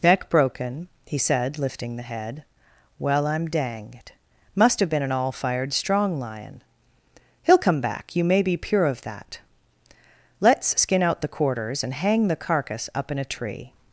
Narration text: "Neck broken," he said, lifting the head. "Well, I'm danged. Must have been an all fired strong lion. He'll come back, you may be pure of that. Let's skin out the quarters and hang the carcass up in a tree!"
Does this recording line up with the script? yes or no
yes